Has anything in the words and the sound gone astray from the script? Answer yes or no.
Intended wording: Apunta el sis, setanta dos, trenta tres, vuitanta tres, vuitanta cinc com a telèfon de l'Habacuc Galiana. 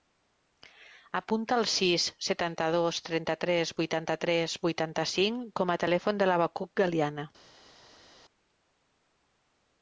no